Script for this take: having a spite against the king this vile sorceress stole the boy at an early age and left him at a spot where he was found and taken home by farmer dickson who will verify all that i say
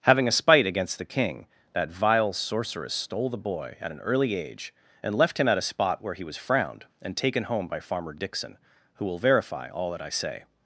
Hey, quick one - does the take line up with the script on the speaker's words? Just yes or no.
no